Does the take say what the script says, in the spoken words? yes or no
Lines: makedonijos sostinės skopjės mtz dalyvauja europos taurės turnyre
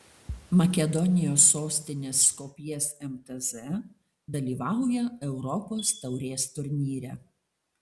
yes